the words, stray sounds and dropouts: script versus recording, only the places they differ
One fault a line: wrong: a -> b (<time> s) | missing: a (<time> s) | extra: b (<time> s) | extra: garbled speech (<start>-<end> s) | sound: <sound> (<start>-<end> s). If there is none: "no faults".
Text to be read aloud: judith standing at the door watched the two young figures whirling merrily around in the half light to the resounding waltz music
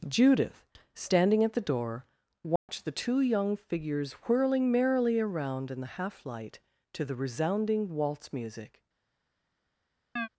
sound: dropout (2.6-2.7 s)
sound: chirp (10.2-10.3 s)